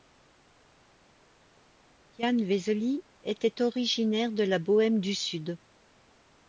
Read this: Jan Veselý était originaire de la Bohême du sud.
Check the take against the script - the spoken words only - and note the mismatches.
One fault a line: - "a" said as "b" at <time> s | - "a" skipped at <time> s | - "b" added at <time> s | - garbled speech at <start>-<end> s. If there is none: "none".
none